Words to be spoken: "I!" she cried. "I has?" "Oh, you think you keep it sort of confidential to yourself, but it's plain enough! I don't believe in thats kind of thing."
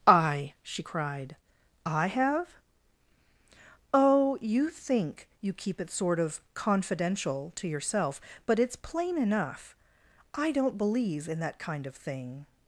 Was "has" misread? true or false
true